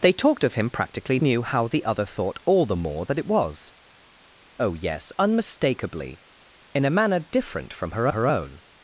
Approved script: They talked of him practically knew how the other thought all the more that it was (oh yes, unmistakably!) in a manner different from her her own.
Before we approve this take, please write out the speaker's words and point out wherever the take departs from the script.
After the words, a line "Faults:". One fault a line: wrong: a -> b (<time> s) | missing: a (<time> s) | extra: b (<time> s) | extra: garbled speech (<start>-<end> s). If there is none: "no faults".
They talked of him practically knew how the other thought all the more that it was (oh yes, unmistakably!) in a manner different from her her own.
Faults:
no faults